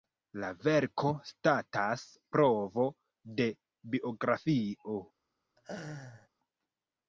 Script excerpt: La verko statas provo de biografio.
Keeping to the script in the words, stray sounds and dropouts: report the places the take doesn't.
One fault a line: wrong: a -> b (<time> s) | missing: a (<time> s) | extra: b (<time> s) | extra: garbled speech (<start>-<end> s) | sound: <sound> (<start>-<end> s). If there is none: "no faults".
sound: laugh (5.6-6.3 s)